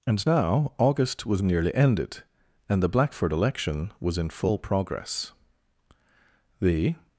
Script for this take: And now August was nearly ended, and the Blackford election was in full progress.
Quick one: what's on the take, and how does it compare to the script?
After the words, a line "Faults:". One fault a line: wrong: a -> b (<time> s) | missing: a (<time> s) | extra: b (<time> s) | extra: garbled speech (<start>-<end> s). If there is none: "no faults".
And now August was nearly ended, and the Blackford election was in full progress. The
Faults:
extra: The (6.6 s)